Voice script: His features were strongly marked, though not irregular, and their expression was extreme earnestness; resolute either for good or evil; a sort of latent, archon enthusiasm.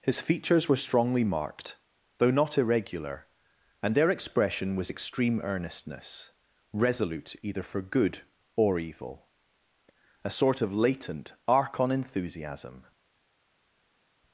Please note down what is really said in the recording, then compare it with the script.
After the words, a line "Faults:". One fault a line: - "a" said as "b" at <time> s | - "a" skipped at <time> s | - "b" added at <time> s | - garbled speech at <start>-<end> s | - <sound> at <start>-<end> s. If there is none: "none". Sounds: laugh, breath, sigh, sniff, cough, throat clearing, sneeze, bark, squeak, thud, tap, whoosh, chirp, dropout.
His features were strongly marked, though not irregular, and their expression was extreme earnestness; resolute either for good or evil; a sort of latent, archon enthusiasm.
Faults:
none